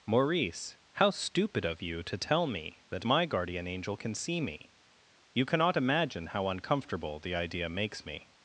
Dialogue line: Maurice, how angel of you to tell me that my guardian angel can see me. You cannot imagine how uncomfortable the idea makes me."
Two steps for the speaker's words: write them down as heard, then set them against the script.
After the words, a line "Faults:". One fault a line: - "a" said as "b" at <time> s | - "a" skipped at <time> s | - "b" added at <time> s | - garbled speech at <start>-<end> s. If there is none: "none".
Maurice, how stupid of you to tell me that my guardian angel can see me. You cannot imagine how uncomfortable the idea makes me."
Faults:
- "angel" said as "stupid" at 1.1 s